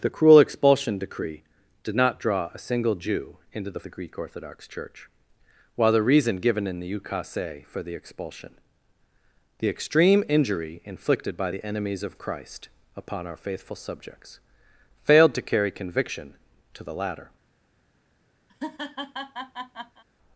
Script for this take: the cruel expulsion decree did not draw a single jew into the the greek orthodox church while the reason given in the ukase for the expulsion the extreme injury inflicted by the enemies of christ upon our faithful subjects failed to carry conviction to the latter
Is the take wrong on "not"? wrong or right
right